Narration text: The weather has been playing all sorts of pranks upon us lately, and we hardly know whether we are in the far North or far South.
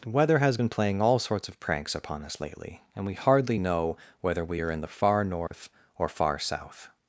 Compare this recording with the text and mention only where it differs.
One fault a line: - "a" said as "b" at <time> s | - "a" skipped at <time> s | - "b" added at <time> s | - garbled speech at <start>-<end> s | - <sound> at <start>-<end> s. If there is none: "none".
- dropout at 5.5-5.5 s